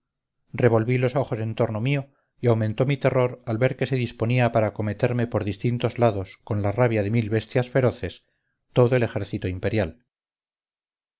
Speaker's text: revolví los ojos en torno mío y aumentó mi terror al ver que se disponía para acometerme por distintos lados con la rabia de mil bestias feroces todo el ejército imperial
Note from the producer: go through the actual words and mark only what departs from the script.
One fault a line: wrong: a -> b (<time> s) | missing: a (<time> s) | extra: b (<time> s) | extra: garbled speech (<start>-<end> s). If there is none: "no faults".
no faults